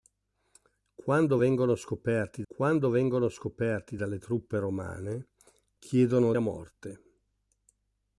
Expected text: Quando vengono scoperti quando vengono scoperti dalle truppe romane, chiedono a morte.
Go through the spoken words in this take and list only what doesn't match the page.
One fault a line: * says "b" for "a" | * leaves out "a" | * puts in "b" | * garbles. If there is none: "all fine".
all fine